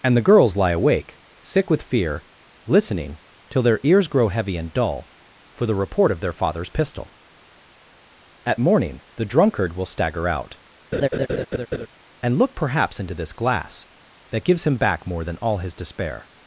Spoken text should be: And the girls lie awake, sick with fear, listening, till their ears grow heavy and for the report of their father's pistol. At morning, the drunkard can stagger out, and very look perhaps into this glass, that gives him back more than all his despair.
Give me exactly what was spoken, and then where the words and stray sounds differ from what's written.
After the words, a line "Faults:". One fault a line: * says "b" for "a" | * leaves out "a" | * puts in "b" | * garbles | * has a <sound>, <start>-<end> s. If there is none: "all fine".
And the girls lie awake, sick with fear, listening, till their ears grow heavy and dull, for the report of their father's pistol. At morning, the drunkard will stagger out, and look perhaps into this glass, that gives him back more than all his despair.
Faults:
* puts in "dull"
* says "will" for "can"
* has a laugh, 10.9-11.9 s
* leaves out "very"